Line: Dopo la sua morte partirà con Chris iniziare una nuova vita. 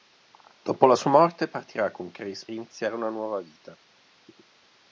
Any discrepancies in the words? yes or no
no